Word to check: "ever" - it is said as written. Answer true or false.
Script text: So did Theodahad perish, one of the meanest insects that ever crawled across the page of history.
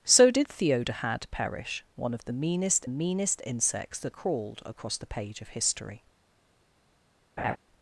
false